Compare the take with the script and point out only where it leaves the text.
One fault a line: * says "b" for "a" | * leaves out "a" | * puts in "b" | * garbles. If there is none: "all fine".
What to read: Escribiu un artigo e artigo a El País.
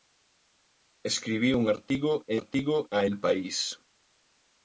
all fine